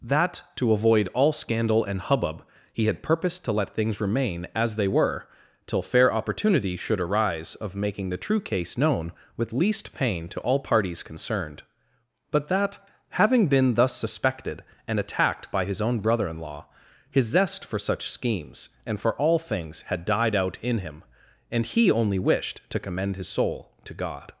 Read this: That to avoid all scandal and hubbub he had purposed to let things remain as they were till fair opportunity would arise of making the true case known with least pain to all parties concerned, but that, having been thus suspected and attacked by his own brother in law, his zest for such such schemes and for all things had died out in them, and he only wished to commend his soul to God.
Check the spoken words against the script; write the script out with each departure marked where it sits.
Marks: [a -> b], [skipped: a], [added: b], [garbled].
That to avoid all scandal and hubbub he had purposed to let things remain as they were till fair opportunity [would -> should] arise of making the true case known with least pain to all parties concerned, but that, having been thus suspected and attacked by his own brother in law, his zest for such [skipped: such] schemes and for all things had died out in [them, -> him] and he only wished to commend his soul to God.